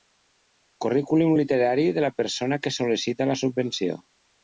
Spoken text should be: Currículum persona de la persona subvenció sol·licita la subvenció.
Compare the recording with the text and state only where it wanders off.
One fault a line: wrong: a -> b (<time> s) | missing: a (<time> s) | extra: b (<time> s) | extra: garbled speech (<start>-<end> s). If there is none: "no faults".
wrong: persona -> literari (1.4 s)
wrong: subvenció -> que (2.7 s)